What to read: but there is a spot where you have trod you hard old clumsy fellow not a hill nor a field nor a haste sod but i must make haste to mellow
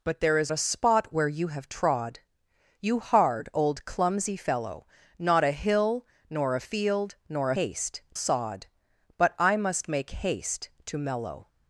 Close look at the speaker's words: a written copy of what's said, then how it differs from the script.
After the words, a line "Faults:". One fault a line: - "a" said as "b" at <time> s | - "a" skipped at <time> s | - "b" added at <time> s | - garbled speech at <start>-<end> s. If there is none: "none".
but there is a spot where you have trod you hard old clumsy fellow not a hill nor a field nor a haste sod but i must make haste to mellow
Faults:
none